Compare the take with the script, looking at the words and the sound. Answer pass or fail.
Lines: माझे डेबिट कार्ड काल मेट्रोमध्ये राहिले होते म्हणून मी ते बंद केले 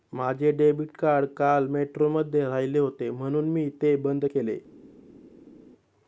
pass